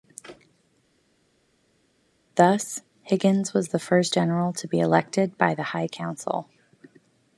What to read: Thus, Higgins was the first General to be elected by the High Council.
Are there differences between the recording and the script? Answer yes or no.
no